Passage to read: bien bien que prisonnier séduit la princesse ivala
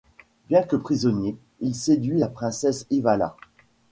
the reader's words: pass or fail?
fail